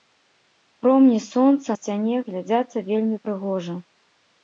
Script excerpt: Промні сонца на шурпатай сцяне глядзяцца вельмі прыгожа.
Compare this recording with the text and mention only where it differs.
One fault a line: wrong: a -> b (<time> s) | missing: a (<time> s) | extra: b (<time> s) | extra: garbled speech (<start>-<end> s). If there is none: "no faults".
missing: на шурпатай (1.8 s)